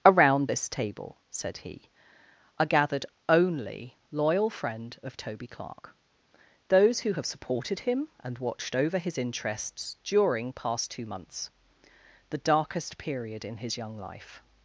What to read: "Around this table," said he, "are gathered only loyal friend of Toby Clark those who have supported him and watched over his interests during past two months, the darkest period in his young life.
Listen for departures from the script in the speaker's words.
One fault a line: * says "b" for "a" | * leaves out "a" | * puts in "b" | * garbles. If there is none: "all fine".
all fine